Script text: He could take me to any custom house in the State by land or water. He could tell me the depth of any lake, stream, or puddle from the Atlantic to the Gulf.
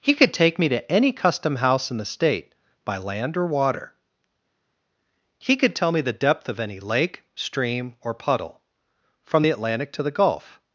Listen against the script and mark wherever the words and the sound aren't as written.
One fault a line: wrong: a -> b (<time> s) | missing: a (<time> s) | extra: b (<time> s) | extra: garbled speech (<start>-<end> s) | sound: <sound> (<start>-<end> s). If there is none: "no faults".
no faults